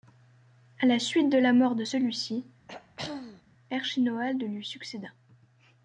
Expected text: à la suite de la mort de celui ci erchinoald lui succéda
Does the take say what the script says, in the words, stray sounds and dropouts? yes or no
no